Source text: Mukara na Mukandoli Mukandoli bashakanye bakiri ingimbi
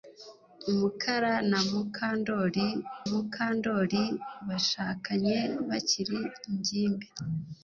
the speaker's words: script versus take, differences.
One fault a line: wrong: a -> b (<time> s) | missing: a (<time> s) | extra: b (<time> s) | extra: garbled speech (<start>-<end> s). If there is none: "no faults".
no faults